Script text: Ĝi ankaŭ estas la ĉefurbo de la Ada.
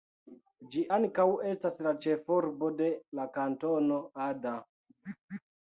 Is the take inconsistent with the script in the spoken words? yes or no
yes